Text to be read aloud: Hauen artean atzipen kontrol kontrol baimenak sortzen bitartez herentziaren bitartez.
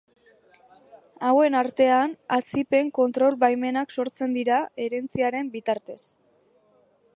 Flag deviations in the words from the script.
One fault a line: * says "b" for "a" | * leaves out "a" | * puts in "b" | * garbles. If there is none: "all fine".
* leaves out "kontrol"
* says "dira" for "bitartez"